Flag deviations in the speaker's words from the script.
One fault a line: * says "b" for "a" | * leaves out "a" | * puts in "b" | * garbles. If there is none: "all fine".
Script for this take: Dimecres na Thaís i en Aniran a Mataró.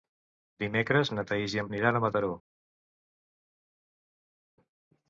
all fine